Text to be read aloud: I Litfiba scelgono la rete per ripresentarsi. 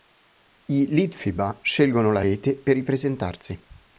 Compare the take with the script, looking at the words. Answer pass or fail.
pass